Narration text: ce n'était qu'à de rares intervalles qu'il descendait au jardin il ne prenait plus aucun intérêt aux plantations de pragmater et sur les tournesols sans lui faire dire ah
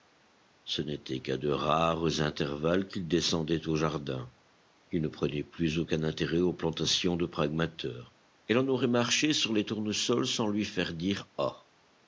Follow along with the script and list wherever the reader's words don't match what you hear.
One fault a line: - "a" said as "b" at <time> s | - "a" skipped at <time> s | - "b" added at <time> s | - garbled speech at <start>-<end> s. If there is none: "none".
- "l'on aurait marché" added at 8.6 s